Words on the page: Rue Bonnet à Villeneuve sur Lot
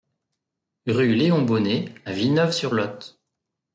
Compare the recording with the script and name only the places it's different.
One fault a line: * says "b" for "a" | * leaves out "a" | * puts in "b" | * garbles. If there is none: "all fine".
* puts in "Léon"